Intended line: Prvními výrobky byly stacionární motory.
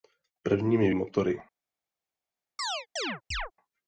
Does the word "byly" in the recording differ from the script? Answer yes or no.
yes